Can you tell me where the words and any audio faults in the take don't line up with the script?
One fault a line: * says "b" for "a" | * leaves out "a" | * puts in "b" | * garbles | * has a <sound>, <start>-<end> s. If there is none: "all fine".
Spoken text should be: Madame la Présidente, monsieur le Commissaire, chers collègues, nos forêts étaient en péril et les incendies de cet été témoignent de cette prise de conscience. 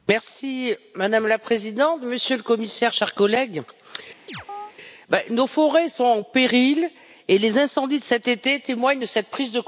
* has a chirp, 4.3-4.7 s
* says "sont" for "étaient"